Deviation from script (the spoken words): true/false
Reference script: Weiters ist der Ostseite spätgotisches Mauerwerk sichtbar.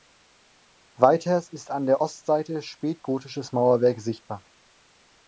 true